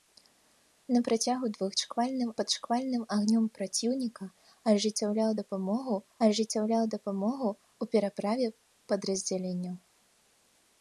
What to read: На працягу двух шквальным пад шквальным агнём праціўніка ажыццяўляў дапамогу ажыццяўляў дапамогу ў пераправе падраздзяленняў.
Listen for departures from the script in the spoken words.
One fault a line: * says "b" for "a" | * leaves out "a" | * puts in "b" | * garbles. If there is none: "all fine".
all fine